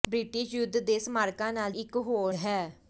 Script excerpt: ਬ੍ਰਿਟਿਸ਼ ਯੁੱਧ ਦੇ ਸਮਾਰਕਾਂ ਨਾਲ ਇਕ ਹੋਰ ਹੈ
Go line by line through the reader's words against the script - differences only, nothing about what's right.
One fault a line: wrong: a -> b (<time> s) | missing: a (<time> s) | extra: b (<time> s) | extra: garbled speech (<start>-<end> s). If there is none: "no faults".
no faults